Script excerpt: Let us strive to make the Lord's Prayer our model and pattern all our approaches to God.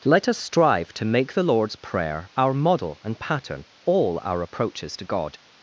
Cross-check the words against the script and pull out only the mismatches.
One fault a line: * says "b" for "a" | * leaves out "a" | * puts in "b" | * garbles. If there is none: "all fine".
all fine